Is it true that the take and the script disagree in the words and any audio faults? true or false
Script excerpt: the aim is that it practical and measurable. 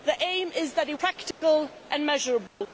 true